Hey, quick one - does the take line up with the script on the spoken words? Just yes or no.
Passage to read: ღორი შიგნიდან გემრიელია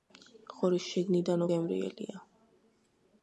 yes